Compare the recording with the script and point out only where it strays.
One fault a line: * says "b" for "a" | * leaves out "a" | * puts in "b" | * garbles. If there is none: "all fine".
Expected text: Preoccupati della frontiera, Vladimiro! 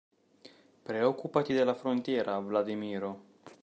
all fine